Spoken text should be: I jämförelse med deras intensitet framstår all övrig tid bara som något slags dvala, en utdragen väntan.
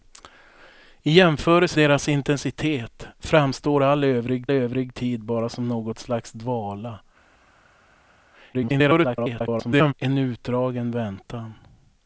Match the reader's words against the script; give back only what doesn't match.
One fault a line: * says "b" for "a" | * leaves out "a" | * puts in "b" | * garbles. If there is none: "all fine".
* leaves out "med"
* puts in "övrig"
* garbles